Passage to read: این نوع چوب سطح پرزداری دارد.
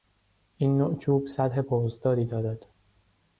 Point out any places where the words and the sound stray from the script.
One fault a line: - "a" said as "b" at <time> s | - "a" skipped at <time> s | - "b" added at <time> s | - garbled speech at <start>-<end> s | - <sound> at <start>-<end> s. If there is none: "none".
none